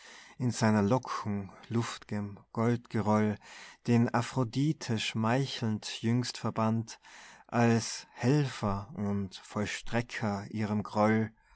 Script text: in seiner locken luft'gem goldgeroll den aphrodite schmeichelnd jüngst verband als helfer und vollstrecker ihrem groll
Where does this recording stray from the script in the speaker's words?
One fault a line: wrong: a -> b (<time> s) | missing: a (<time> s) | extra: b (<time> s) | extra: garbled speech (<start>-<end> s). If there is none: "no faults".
no faults